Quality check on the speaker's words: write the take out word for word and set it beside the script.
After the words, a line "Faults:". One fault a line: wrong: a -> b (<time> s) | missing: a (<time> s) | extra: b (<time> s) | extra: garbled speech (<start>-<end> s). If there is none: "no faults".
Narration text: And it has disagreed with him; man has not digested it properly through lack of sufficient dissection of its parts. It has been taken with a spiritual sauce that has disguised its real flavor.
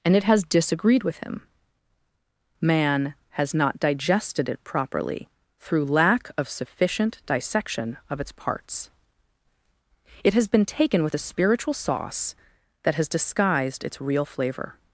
And it has disagreed with him; man has not digested it properly through lack of sufficient dissection of its parts. It has been taken with a spiritual sauce that has disguised its real flavor.
Faults:
no faults